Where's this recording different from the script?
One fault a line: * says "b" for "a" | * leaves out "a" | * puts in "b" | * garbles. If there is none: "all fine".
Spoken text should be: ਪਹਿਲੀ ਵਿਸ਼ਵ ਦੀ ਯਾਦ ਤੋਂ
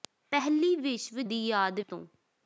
all fine